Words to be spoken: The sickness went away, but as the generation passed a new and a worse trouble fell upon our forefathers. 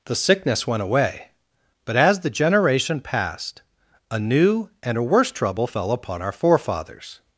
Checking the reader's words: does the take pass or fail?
pass